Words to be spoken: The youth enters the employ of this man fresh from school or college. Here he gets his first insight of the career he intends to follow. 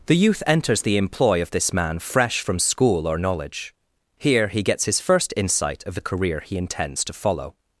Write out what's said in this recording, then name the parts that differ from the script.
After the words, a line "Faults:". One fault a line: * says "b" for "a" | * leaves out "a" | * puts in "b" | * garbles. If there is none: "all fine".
The youth enters the employ of this man fresh from school or knowledge. Here he gets his first insight of the career he intends to follow.
Faults:
* says "knowledge" for "college"